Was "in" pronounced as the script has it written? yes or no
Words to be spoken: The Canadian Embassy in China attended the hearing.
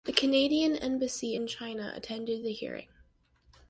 yes